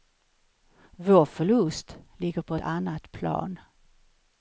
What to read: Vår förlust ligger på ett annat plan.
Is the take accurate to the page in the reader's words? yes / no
no